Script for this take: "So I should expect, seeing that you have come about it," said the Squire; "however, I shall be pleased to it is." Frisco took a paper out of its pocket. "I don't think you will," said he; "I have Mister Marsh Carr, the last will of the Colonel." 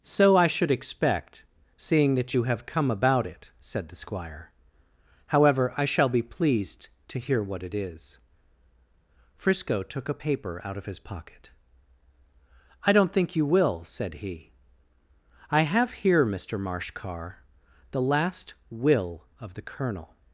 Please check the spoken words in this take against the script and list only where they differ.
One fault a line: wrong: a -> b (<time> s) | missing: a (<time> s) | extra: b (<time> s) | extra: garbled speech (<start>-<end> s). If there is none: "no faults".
extra: hear what (7.2 s)
wrong: its -> his (10.9 s)
extra: here (16.0 s)